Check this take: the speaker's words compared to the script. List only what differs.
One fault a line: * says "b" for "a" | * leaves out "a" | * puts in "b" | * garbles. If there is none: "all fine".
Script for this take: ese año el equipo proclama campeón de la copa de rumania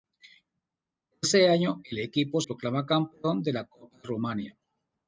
all fine